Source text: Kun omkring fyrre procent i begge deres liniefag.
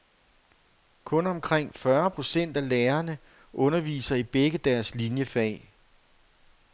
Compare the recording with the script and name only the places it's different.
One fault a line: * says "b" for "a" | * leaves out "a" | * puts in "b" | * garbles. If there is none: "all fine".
* puts in "af lærerne underviser"